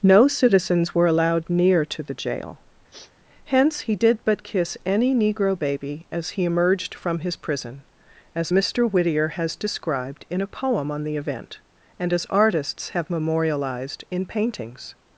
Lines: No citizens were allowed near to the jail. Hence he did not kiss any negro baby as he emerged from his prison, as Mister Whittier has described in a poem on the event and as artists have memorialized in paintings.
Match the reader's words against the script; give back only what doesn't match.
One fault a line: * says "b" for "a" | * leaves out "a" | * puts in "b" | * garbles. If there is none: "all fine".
* says "but" for "not"